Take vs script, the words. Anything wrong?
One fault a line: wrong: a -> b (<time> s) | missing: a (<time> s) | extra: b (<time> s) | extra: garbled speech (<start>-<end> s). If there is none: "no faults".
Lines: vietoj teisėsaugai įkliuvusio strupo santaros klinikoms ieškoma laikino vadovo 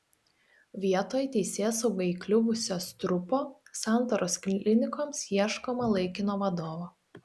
no faults